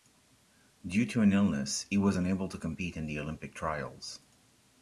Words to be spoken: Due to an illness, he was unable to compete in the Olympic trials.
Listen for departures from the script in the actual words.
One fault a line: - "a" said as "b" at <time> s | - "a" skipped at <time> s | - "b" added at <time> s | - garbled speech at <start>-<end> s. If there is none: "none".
none